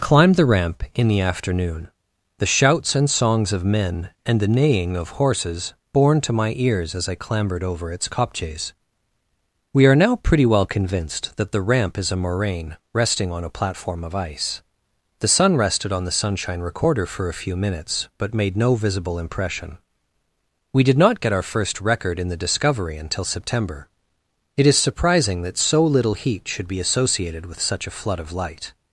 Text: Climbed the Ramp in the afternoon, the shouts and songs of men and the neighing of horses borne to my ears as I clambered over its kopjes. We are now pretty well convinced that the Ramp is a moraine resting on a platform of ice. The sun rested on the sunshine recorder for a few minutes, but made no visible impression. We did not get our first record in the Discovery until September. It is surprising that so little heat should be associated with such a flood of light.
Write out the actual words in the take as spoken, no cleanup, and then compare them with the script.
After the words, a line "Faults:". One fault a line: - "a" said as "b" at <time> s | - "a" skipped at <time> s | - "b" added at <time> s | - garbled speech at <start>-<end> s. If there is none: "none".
Climbed the Ramp in the afternoon, the shouts and songs of men and the neighing of horses borne to my ears as I clambered over its kopjes. We are now pretty well convinced that the Ramp is a moraine resting on a platform of ice. The sun rested on the sunshine recorder for a few minutes, but made no visible impression. We did not get our first record in the Discovery until September. It is surprising that so little heat should be associated with such a flood of light.
Faults:
none